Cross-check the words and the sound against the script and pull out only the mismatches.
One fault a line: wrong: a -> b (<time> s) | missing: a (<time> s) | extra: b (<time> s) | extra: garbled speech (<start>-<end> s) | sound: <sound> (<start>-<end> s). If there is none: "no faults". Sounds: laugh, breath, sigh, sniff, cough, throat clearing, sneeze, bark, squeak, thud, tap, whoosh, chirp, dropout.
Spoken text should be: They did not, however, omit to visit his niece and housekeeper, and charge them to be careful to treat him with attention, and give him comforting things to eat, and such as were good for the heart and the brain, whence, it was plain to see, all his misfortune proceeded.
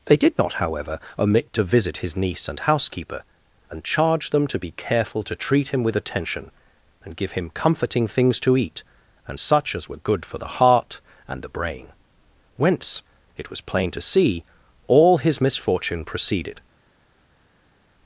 no faults